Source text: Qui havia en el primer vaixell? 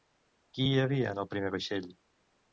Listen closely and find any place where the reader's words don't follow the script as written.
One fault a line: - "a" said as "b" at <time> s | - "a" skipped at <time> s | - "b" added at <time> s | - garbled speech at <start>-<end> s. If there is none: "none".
- "hi" added at 0.7 s